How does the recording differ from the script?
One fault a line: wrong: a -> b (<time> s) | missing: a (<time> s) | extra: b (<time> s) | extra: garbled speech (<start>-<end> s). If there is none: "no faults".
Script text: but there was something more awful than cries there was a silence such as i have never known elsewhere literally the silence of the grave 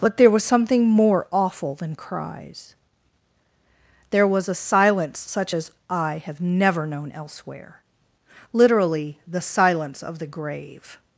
no faults